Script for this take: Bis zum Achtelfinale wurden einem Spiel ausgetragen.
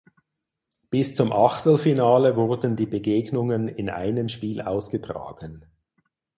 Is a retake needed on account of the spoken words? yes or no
yes